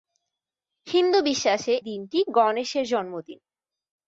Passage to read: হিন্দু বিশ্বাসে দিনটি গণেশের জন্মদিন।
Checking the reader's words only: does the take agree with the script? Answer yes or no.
yes